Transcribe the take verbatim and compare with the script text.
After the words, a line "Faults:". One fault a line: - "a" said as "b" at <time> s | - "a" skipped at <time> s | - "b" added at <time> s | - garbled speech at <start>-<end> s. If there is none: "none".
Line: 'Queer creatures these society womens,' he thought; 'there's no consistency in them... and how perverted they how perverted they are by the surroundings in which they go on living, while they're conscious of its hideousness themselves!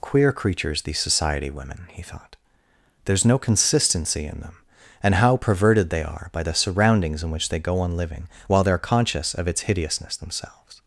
'Queer creatures these society women,' he thought; 'there's no consistency in them... and how perverted they are by the surroundings in which they go on living, while they're conscious of its hideousness themselves!
Faults:
- "womens" said as "women" at 1.5 s
- "how perverted they" skipped at 6.0 s